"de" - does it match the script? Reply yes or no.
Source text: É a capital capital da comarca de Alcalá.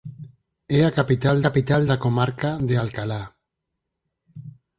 yes